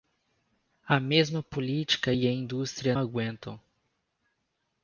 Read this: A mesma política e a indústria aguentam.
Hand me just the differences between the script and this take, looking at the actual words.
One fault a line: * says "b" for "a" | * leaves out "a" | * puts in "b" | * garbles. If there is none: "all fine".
all fine